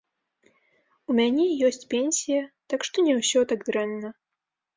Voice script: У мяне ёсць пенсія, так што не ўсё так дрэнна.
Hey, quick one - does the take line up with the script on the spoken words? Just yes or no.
yes